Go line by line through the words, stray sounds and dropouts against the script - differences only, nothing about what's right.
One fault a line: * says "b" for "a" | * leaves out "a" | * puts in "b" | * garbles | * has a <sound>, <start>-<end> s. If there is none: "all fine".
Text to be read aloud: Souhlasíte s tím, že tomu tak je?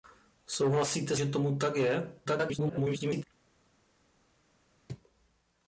* leaves out "s tím"
* garbles